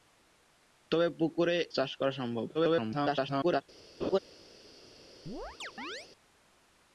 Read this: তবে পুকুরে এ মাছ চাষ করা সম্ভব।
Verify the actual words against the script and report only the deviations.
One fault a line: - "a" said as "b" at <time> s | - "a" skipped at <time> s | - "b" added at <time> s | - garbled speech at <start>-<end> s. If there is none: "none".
- "এ মাছ" skipped at 1.6 s
- garbled speech at 2.5-3.6 s